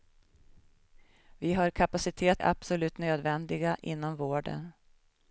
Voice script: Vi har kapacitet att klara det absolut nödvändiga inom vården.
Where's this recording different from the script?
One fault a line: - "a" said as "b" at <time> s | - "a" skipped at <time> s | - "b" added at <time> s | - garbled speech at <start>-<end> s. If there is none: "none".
- "att klara det" skipped at 2.4 s